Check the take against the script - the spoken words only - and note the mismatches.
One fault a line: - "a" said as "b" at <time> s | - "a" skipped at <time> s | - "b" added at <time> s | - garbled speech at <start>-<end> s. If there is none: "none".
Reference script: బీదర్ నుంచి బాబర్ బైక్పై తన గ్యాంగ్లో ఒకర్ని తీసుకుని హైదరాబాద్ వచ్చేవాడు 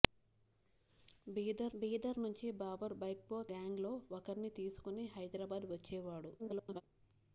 - "బీదర్" added at 1.7 s
- "తన" skipped at 3.4 s
- garbled speech at 6.4-6.8 s